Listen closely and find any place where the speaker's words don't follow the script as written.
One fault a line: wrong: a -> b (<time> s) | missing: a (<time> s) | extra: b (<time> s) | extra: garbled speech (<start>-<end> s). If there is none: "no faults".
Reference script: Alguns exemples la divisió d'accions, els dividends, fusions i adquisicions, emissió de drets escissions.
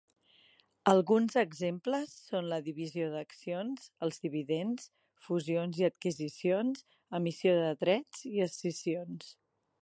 extra: són (2.3 s)
extra: i (8.3 s)